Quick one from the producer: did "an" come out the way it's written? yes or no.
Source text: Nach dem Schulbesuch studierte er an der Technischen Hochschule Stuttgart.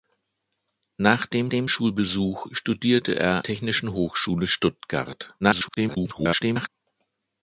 no